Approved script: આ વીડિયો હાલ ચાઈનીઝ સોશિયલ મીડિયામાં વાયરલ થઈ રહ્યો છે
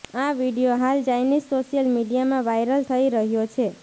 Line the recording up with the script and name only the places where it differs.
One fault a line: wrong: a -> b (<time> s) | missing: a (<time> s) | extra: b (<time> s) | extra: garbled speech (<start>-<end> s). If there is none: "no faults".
no faults